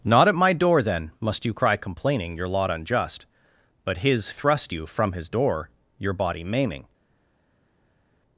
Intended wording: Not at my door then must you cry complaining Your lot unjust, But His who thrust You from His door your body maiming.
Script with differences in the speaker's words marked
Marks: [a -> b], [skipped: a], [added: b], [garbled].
Not at my door then must you cry complaining Your lot unjust, But His [skipped: who] thrust You from His door your body maiming.